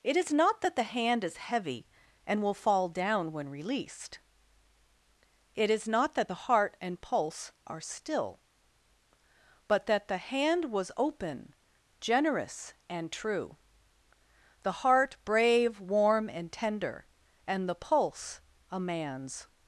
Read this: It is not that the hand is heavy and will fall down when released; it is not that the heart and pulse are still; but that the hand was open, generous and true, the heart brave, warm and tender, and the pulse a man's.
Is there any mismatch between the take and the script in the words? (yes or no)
no